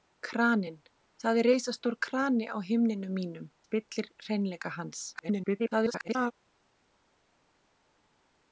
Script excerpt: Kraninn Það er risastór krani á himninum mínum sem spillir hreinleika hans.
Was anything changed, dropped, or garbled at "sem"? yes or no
yes